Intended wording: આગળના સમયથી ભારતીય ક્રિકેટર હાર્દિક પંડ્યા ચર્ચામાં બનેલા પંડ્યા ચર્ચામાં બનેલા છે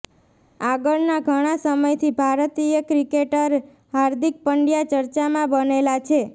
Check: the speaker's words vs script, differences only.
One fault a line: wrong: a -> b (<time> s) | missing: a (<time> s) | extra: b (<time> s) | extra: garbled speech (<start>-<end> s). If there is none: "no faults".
extra: ઘણા (1.3 s)
missing: પંડ્યા ચર્ચામાં બનેલા (6.0 s)